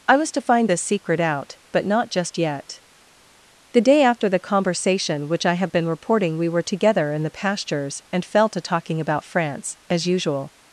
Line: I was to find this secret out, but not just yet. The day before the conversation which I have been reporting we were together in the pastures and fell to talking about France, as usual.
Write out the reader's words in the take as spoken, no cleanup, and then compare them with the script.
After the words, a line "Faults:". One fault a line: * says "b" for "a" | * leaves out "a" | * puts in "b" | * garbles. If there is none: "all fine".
I was to find this secret out, but not just yet. The day after the conversation which I have been reporting we were together in the pastures and fell to talking about France, as usual.
Faults:
* says "after" for "before"